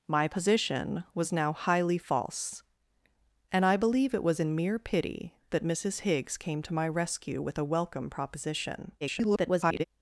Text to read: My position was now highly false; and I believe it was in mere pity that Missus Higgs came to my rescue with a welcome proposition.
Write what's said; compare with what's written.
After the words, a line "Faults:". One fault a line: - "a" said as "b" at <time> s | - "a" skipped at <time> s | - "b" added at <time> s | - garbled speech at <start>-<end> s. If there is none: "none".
My position was now highly false; and I believe it was in mere pity that Missus Higgs came to my rescue with a welcome proposition. [garbled]
Faults:
- garbled speech at 9.0-9.8 s